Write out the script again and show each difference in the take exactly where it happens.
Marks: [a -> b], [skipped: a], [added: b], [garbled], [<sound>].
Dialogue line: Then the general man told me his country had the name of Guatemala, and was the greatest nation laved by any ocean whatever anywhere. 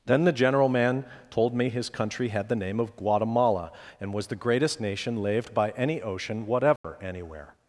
Then the general man told me his country had the name of Guatemala, and was the greatest nation laved by any ocean whatever [dropout] anywhere.